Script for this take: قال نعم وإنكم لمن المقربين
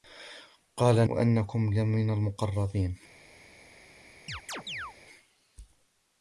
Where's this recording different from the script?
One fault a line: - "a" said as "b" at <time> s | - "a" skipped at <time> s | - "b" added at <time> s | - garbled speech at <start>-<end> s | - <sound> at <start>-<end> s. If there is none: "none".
- "نعم" skipped at 1.1 s
- chirp at 4.3-4.9 s